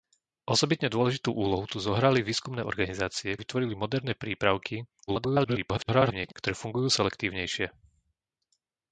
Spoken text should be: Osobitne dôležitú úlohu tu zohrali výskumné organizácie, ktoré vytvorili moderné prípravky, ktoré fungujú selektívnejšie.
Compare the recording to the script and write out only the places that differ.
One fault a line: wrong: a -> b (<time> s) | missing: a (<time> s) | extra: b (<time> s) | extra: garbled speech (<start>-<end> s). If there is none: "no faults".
missing: ktoré (3.4 s)
extra: garbled speech (5.1-6.3 s)